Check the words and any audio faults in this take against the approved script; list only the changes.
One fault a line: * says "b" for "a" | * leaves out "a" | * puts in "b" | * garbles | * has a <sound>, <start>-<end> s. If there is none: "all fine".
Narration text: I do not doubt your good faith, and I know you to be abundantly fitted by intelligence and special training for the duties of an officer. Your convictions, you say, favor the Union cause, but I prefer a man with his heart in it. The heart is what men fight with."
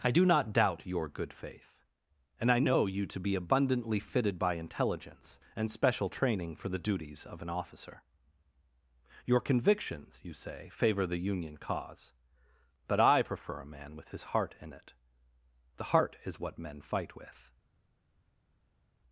all fine